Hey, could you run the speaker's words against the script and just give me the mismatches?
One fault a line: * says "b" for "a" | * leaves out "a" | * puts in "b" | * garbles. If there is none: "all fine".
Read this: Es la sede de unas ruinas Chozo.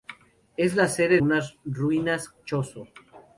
* leaves out "de"